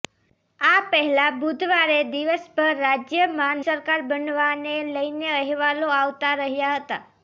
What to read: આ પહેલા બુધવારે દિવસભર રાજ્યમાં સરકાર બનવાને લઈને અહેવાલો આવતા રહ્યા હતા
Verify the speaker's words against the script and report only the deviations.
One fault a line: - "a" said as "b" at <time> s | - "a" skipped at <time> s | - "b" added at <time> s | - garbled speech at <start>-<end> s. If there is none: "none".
none